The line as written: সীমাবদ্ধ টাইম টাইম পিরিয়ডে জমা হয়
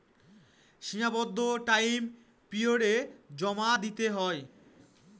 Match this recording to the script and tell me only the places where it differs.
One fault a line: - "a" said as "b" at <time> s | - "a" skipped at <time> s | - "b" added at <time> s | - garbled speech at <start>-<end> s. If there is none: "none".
- "টাইম" skipped at 2.0 s
- "দিতে" added at 3.8 s